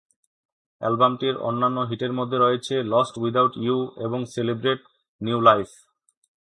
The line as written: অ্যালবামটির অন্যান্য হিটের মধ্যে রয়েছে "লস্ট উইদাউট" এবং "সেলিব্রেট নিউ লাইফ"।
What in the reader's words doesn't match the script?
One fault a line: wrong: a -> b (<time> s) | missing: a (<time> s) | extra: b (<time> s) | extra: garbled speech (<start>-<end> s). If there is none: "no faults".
extra: ইউ (3.6 s)